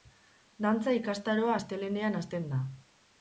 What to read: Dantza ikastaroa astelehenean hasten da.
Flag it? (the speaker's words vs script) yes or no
no